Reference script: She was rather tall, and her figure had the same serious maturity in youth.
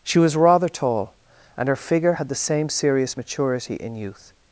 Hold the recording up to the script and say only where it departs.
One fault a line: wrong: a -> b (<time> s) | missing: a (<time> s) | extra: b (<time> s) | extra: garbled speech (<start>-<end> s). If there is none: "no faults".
no faults